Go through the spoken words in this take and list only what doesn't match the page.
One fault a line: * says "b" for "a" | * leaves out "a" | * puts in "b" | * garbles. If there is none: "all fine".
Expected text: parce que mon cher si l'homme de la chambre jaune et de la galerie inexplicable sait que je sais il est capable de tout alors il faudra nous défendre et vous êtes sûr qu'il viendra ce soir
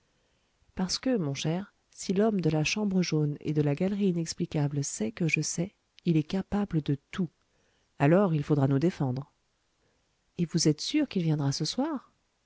all fine